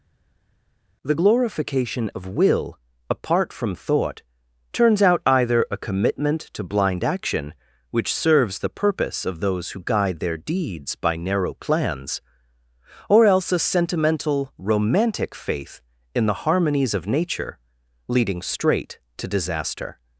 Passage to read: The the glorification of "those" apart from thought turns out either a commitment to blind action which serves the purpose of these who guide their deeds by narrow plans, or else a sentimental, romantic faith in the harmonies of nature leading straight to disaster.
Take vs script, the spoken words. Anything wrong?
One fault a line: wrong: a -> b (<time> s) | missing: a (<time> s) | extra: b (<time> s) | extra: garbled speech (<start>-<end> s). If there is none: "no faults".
missing: the (1.2 s)
wrong: those -> will (2.2 s)
wrong: these -> those (9.4 s)